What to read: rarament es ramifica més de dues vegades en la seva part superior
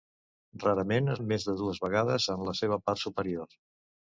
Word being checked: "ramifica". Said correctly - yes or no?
no